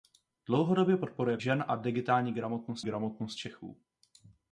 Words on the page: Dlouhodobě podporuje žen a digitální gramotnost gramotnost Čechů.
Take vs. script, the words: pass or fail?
pass